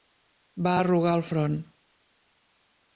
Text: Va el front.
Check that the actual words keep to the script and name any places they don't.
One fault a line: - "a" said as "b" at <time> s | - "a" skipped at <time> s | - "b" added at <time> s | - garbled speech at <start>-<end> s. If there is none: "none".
- "arrugar" added at 0.8 s